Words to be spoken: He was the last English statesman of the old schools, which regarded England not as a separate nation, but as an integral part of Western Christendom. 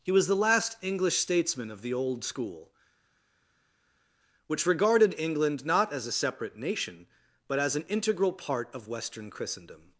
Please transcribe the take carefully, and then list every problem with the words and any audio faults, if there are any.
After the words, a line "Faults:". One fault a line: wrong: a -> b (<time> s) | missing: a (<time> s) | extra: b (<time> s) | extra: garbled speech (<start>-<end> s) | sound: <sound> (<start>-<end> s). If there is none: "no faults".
He was the last English statesman of the old school, which regarded England not as a separate nation, but as an integral part of Western Christendom.
Faults:
wrong: schools -> school (2.2 s)